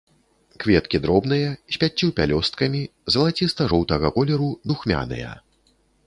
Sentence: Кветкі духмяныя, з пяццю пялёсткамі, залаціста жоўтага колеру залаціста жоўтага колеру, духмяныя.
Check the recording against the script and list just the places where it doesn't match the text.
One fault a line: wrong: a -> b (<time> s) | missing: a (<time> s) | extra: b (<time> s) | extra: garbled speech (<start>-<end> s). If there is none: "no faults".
wrong: духмяныя -> дробныя (1.0 s)
missing: залаціста жоўтага колеру (4.5 s)